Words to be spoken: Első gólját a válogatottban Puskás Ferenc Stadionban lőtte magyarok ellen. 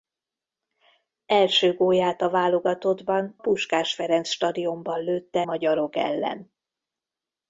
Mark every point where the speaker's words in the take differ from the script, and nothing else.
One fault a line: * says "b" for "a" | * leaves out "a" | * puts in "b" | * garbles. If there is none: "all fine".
all fine